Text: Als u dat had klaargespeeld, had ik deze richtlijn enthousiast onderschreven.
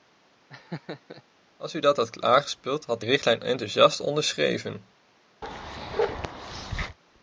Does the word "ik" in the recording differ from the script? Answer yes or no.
yes